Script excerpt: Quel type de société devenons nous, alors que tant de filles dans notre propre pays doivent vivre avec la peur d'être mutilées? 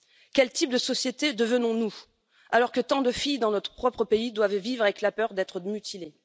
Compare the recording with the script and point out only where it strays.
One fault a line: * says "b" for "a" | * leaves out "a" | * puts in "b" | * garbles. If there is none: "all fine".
all fine